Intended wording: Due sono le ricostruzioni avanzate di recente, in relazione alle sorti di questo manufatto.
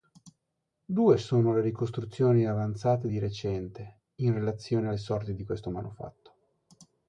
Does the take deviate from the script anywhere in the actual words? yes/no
no